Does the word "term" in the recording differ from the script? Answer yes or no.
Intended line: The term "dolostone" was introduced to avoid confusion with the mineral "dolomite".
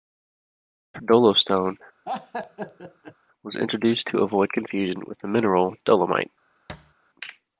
yes